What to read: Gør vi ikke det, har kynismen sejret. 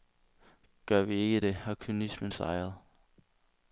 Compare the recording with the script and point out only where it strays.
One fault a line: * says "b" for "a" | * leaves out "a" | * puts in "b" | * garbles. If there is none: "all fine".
all fine